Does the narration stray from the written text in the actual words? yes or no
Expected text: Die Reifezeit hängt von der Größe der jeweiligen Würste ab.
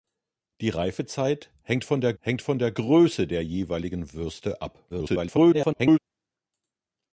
yes